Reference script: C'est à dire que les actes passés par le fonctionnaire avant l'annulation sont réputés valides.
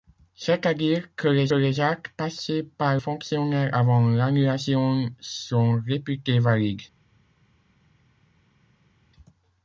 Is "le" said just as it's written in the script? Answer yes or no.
no